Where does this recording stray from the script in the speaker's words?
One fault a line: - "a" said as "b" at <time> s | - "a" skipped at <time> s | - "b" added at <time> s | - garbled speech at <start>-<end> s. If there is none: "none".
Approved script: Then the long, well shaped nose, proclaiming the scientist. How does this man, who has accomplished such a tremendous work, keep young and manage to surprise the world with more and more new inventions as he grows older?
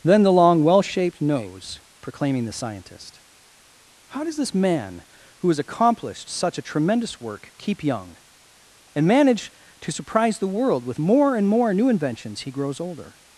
- "as" skipped at 12.4 s